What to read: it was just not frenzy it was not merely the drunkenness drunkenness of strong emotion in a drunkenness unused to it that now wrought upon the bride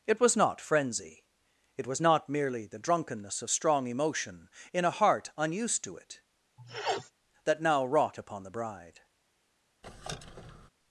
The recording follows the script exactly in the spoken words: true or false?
false